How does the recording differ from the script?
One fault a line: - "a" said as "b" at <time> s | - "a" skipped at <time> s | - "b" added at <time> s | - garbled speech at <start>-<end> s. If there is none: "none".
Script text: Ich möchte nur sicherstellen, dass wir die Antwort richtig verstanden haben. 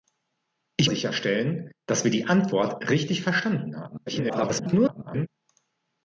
- "möchte nur" skipped at 0.9 s
- garbled speech at 4.1-5.3 s